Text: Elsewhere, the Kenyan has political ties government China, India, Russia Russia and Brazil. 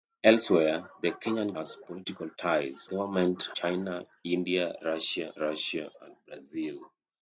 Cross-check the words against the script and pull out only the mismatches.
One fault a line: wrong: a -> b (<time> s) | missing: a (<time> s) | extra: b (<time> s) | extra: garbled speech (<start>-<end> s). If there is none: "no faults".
no faults